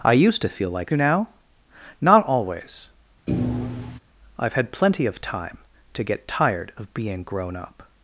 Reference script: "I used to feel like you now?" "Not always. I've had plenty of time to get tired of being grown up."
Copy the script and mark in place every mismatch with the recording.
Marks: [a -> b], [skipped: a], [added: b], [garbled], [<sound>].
"I used to feel like you now?" "Not always. [thud] I've had plenty of time to get tired of being grown up."